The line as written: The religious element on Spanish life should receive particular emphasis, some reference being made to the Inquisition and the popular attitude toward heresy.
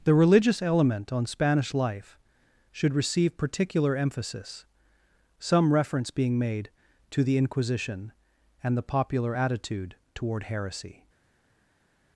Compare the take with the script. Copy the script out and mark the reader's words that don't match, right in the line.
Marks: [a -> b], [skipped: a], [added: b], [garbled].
The religious element on Spanish life should receive particular emphasis, some reference being made to the Inquisition and the popular attitude toward heresy.